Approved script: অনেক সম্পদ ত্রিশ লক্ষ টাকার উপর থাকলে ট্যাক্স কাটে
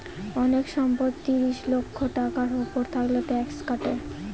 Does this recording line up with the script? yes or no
yes